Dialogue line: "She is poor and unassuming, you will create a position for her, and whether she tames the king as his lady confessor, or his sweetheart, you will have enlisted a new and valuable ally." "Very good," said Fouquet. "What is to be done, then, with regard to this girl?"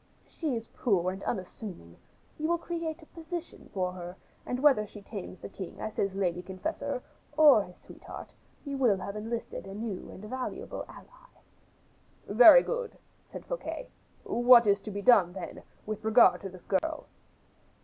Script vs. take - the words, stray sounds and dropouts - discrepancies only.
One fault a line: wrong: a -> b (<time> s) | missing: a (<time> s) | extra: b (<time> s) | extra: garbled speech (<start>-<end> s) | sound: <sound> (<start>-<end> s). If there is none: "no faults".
sound: dropout (16.8-16.8 s)